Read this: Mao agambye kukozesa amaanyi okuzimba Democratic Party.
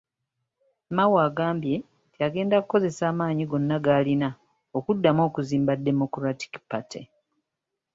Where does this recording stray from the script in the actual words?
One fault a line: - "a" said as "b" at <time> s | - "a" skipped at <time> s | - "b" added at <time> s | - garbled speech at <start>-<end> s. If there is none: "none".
- "nti agenda" added at 2.1 s
- "gonna g'alina okuddamu" added at 3.5 s